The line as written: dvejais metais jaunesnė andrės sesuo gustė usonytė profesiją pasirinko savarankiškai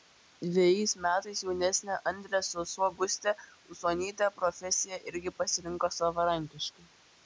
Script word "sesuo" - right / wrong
right